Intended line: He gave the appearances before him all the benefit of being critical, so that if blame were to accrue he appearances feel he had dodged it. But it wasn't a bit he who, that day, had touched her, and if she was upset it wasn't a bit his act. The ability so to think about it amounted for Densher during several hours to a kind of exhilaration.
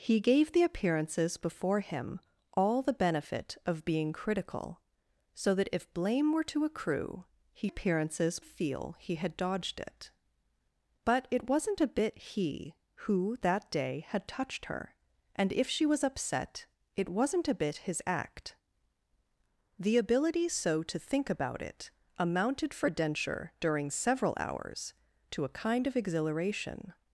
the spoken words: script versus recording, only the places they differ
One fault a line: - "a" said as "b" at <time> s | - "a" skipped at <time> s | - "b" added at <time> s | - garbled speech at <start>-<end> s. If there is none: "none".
none